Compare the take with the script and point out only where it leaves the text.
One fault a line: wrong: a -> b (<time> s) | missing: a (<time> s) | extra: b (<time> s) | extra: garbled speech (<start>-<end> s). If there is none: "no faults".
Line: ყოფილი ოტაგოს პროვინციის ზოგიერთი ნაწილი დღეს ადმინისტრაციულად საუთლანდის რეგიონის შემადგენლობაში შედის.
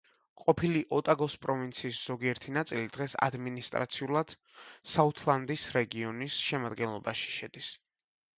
no faults